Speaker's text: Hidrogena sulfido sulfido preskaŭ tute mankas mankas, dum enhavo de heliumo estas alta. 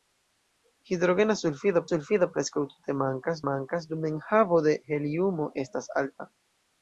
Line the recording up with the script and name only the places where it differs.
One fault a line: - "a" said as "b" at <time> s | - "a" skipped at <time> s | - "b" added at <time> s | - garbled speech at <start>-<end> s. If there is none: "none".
none